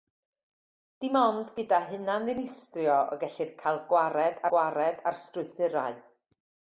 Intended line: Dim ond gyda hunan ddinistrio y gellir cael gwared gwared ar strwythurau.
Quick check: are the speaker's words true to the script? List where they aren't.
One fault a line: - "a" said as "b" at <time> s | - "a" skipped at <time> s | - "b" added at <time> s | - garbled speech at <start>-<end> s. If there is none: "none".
none